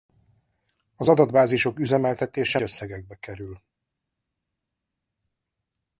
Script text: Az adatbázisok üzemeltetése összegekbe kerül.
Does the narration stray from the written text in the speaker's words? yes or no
no